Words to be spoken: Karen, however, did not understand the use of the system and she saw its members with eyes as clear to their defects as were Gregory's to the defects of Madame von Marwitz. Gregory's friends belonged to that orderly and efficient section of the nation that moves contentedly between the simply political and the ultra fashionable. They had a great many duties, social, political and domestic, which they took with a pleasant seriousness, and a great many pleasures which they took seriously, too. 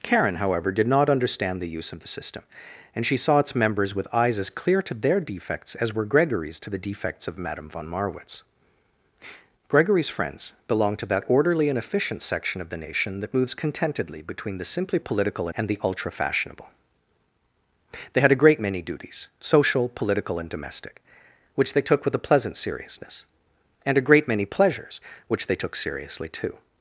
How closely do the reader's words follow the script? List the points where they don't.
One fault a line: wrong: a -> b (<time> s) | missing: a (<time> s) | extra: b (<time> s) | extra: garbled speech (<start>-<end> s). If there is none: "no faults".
no faults